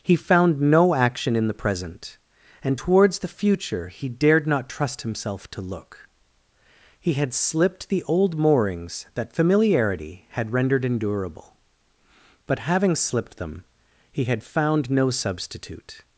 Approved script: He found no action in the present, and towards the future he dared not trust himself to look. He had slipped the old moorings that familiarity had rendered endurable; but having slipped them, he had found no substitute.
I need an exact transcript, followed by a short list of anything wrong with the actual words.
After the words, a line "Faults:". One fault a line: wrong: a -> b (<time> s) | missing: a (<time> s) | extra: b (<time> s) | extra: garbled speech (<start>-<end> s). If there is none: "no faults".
He found no action in the present, and towards the future he dared not trust himself to look. He had slipped the old moorings that familiarity had rendered endurable; but having slipped them, he had found no substitute.
Faults:
no faults